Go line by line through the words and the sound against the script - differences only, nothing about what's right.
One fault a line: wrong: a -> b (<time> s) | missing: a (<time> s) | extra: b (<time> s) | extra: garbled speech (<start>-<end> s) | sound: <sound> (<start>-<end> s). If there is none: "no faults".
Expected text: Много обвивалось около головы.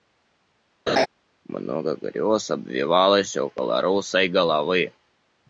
sound: laugh (0.9-1.1 s)
extra: грез (2.0 s)
extra: русой (3.8 s)